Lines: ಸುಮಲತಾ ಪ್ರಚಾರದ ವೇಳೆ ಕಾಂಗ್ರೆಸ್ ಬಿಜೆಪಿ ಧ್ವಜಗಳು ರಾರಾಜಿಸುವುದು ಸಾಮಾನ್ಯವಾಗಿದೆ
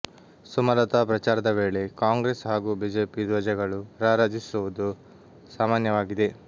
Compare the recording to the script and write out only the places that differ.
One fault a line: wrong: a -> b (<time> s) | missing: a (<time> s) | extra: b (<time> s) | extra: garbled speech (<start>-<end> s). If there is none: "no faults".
extra: ಹಾಗೂ (2.5 s)